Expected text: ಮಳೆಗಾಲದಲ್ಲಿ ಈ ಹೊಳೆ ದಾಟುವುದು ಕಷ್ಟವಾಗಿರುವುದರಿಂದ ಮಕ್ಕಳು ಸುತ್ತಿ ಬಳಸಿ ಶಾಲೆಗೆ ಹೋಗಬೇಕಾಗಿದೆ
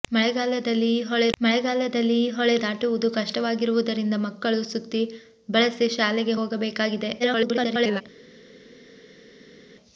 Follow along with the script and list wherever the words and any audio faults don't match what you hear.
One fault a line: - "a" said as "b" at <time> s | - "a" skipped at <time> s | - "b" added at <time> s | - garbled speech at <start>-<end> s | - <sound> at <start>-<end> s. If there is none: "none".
- "ಮಳೆಗಾಲದಲ್ಲಿ ಈ ಹೊಳೆ" added at 1.4 s
- garbled speech at 7.2-8.0 s